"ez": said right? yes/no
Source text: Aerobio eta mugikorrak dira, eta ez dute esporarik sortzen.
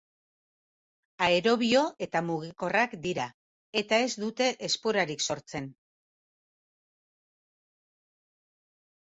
yes